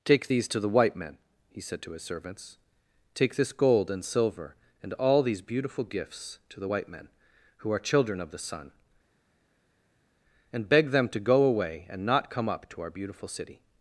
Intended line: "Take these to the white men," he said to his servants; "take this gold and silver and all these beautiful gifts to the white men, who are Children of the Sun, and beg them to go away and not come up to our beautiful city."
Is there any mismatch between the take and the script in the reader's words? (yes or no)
no